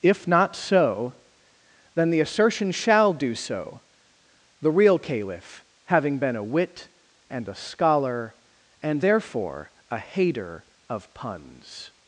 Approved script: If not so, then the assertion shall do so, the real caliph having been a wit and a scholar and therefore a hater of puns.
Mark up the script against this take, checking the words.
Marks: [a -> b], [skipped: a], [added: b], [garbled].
If not so, then the assertion shall do so, the real caliph having been a wit and a scholar and therefore a hater of puns.